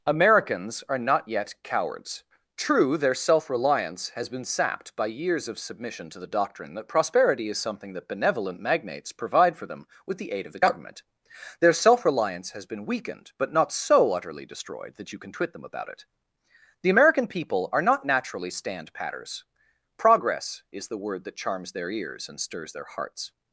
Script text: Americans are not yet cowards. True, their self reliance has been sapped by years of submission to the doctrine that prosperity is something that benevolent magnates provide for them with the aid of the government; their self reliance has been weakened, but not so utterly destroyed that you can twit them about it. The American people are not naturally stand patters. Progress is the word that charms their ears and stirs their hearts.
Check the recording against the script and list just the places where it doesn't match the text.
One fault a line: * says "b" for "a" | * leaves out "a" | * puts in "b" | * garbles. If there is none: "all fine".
all fine